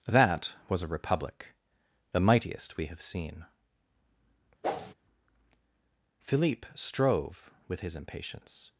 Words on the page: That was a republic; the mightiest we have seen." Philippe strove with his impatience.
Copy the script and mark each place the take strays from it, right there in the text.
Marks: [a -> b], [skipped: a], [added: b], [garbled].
That was a republic; the mightiest we have seen." Philippe strove with his impatience.